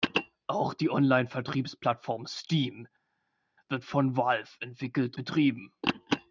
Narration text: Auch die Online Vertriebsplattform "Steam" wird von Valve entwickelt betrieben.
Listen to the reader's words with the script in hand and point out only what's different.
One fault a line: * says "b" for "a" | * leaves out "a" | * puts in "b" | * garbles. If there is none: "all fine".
all fine